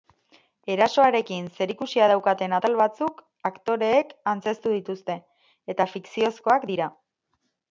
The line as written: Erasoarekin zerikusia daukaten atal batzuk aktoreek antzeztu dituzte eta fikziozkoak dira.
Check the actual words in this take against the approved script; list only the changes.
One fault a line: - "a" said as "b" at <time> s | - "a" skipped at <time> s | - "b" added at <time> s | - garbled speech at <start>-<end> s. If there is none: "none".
none